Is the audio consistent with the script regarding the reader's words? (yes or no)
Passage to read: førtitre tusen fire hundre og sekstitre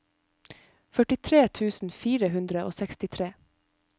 yes